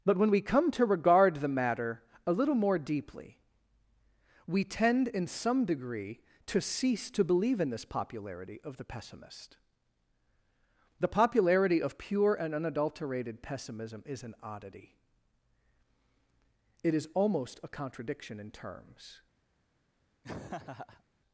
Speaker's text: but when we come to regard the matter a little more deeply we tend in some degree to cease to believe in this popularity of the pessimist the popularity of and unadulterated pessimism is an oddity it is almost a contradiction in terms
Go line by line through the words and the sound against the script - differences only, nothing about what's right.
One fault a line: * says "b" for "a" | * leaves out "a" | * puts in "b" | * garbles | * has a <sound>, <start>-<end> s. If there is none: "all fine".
* puts in "pure"
* has a laugh, 20.2-21.0 s